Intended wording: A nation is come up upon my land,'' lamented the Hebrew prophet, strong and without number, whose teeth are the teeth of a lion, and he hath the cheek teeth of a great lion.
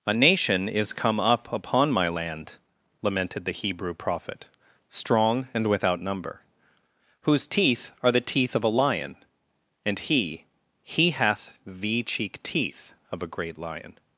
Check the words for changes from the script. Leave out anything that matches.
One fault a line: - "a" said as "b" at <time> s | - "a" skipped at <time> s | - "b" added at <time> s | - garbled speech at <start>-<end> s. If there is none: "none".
- "he" added at 10.8 s